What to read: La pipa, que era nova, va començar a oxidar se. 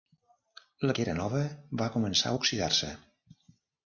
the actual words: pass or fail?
fail